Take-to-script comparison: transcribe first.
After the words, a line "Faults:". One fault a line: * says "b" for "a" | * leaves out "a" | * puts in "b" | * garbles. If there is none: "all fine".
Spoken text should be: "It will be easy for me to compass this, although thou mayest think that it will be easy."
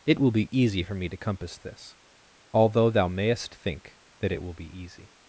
"It will be easy for me to compass this, although thou mayest think that it will be easy."
Faults:
all fine